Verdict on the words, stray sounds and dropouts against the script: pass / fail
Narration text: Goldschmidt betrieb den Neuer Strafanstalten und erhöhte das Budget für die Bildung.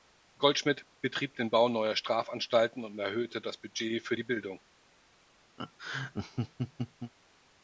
fail